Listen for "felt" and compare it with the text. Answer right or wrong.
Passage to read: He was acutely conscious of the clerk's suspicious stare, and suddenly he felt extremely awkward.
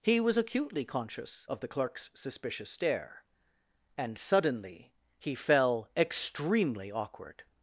wrong